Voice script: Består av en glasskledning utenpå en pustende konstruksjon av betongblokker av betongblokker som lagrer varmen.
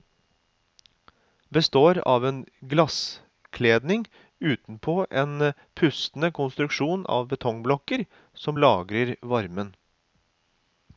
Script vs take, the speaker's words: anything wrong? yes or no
yes